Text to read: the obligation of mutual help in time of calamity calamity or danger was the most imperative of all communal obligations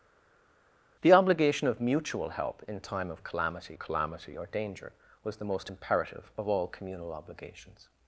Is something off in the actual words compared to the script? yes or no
no